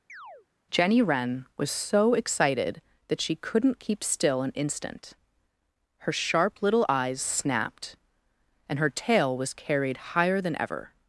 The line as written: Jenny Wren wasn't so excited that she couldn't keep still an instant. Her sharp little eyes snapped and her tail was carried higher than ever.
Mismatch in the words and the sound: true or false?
true